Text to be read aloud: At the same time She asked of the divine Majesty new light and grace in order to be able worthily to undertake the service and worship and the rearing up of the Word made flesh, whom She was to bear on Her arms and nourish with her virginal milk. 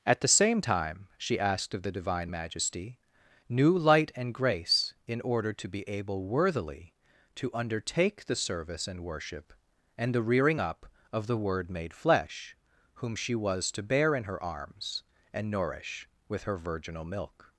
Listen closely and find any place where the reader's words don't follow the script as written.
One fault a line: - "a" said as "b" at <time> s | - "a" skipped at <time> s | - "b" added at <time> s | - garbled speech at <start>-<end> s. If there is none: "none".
- "on" said as "in" at 14.1 s